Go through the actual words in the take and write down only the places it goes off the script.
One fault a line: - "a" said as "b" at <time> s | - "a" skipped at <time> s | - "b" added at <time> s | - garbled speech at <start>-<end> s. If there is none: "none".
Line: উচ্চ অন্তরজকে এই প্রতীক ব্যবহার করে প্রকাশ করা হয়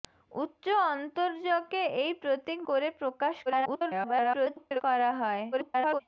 - "ব্যবহার" skipped at 2.6 s
- garbled speech at 3.5-4.8 s
- garbled speech at 5.5-6.0 s